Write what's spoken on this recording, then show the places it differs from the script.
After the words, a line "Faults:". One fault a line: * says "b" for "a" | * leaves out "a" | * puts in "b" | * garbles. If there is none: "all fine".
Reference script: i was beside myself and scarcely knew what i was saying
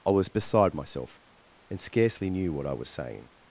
i was beside myself and scarcely knew what i was saying
Faults:
all fine